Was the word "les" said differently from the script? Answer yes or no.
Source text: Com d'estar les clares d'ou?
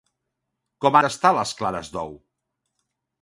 no